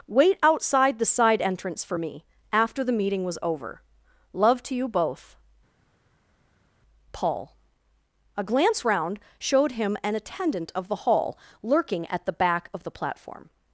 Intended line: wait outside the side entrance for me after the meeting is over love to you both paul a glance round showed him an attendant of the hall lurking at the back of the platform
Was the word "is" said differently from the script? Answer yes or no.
yes